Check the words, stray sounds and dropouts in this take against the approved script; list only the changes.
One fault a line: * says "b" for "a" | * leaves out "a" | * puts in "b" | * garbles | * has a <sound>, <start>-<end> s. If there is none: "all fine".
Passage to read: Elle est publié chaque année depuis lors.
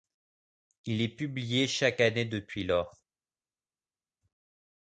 * says "Il" for "Elle"